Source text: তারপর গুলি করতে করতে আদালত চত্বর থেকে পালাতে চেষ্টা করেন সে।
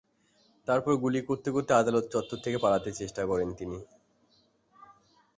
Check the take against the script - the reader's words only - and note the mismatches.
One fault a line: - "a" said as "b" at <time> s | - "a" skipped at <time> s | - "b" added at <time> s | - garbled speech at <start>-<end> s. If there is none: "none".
- "সে" said as "তিনি" at 3.6 s